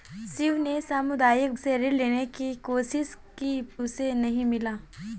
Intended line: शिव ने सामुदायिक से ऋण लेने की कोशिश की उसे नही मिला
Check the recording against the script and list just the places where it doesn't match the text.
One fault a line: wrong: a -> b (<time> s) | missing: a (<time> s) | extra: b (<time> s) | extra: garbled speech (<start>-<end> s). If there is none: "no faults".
no faults